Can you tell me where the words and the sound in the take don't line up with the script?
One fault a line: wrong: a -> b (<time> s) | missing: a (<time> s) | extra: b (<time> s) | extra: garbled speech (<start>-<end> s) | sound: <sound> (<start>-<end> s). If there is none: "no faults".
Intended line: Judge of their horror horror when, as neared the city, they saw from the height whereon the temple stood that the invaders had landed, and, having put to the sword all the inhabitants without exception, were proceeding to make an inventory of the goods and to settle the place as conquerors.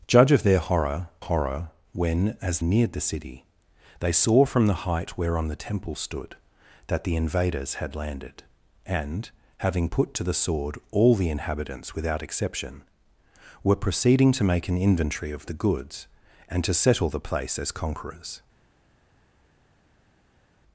no faults